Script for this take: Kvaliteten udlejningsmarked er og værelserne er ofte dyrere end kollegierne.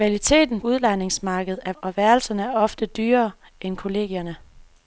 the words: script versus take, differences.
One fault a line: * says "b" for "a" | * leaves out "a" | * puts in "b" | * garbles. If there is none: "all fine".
all fine